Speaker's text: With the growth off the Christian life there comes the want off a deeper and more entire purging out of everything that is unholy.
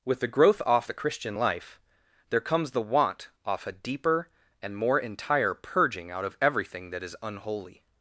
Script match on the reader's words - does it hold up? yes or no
yes